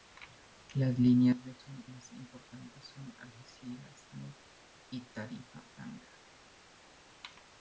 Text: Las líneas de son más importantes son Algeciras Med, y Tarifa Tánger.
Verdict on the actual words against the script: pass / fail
pass